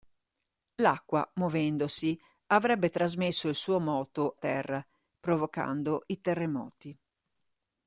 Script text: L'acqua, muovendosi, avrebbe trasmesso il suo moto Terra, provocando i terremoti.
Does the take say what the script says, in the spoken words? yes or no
yes